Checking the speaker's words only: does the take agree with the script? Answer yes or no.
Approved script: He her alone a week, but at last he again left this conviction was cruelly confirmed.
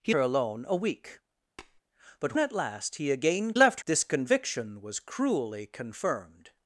yes